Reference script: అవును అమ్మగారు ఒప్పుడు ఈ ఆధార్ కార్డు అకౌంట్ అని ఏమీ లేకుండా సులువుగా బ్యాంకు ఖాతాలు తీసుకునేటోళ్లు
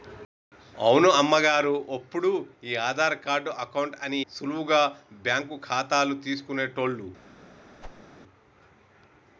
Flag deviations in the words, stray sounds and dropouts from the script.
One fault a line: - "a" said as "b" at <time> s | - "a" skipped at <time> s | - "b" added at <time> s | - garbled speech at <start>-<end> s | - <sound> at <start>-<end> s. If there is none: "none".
- "ఏమీ లేకుండా" skipped at 4.2 s
- whoosh at 7.8-8.0 s